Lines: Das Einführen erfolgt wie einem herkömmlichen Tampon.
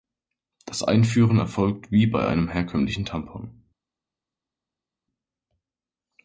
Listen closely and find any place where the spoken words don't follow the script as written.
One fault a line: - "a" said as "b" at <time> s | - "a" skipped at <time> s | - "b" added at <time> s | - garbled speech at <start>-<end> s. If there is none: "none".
- "bei" added at 2.1 s